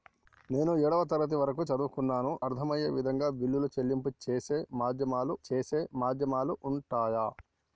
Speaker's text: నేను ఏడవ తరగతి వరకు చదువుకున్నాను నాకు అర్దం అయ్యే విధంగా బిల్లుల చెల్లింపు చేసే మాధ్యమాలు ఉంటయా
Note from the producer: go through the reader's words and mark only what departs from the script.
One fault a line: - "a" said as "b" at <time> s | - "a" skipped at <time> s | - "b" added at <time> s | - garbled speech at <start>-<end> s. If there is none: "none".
- "నాకు" skipped at 2.3 s
- "చేసే మాధ్యమాలు" added at 5.5 s